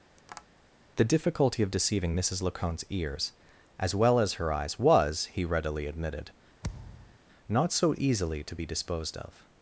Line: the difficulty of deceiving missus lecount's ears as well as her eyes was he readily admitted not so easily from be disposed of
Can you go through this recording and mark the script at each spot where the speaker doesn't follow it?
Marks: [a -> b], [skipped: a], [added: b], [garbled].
the difficulty of deceiving missus lecount's ears as well as her eyes was he readily admitted not so easily [from -> to] be disposed of